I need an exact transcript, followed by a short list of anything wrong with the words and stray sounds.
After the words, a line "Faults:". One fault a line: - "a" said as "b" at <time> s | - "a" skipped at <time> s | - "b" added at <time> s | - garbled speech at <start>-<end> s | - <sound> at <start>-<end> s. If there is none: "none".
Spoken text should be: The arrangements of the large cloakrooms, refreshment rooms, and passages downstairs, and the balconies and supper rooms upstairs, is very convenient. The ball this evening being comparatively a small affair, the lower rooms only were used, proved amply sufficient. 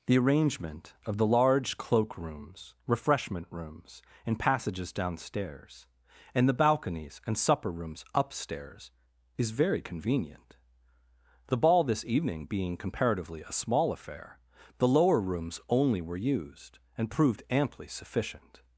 The arrangement of the large cloakrooms, refreshment rooms, and passages downstairs, and the balconies and supper rooms upstairs, is very convenient. The ball this evening being comparatively a small affair, the lower rooms only were used, and proved amply sufficient.
Faults:
- "arrangements" said as "arrangement" at 0.2 s
- "and" added at 17.0 s